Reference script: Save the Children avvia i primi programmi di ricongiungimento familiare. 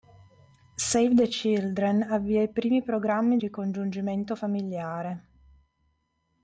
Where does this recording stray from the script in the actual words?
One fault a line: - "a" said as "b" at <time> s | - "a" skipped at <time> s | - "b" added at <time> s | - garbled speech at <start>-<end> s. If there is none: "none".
- "di" skipped at 3.4 s